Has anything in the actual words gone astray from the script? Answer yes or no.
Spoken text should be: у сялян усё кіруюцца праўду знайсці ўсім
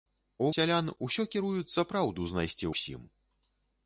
no